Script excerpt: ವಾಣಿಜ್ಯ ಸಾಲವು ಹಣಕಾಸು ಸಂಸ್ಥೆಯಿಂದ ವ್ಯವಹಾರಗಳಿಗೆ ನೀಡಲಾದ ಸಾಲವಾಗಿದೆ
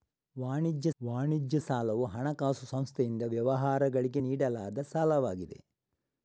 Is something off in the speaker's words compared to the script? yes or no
yes